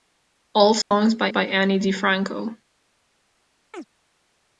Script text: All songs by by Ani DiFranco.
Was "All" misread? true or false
false